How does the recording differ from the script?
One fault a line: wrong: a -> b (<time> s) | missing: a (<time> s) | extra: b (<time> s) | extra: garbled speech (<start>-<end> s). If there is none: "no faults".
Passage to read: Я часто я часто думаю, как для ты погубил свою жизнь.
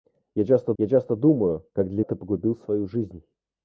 no faults